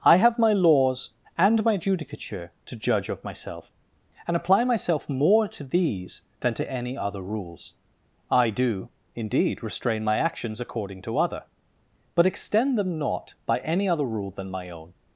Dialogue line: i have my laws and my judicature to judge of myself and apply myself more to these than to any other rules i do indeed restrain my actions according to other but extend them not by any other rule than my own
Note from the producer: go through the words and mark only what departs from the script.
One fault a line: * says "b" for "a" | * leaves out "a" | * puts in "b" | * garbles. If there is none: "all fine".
all fine